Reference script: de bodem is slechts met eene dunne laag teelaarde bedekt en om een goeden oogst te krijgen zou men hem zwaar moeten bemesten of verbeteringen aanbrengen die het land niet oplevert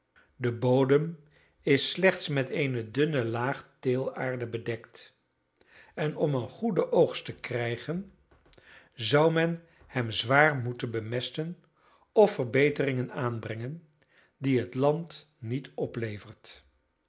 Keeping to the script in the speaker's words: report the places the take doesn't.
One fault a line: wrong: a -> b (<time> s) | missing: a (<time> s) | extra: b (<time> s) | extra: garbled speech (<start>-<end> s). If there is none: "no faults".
no faults